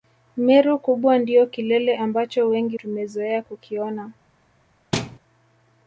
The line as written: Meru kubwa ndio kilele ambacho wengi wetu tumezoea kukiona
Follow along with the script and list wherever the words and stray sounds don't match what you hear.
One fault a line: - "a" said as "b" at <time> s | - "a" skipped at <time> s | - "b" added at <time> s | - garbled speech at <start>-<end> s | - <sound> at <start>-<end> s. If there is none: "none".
- "wetu" skipped at 2.8 s
- thud at 4.9-5.2 s